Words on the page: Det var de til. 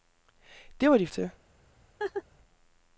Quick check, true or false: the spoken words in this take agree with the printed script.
true